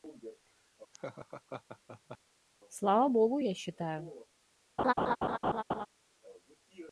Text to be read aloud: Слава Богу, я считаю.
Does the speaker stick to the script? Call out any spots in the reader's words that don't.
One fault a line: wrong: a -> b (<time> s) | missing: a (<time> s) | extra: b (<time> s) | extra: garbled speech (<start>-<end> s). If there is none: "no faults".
no faults